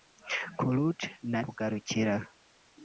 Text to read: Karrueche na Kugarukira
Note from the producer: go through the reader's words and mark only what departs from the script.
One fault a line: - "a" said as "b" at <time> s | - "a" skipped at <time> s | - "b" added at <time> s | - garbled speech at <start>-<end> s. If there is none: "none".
none